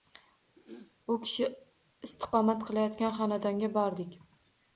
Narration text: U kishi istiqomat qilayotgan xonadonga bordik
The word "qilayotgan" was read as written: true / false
true